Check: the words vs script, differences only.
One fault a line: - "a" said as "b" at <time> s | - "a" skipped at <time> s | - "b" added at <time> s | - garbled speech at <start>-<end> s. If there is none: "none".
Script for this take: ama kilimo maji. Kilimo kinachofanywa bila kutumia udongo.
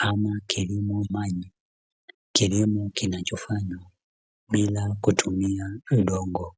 none